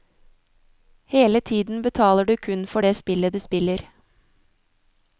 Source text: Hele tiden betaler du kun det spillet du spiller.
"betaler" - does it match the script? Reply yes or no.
yes